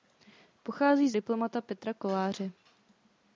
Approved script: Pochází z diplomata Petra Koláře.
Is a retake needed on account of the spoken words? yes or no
no